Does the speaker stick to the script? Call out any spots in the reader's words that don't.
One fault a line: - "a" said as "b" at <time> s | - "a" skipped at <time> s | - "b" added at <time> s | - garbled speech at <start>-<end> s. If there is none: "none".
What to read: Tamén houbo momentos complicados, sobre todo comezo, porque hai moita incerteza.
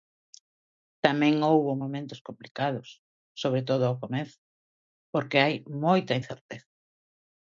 - "ao" added at 3.8 s